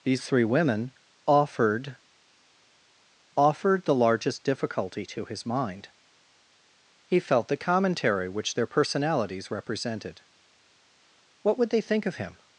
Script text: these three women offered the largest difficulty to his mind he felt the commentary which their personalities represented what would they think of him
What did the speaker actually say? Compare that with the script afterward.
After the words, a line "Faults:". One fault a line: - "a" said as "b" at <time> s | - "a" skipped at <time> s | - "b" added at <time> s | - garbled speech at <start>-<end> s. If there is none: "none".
these three women offered offered the largest difficulty to his mind he felt the commentary which their personalities represented what would they think of him
Faults:
- "offered" added at 3.4 s